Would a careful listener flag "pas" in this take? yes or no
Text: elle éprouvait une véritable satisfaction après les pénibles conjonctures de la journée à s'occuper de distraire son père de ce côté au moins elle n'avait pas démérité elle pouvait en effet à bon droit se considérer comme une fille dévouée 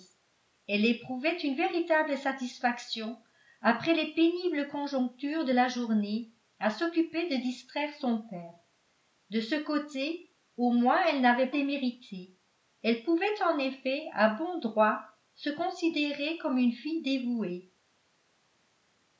yes